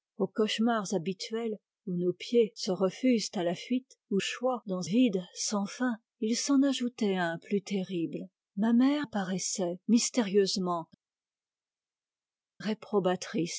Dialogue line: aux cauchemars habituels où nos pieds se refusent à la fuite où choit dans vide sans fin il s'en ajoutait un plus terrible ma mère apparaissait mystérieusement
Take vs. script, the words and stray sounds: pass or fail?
pass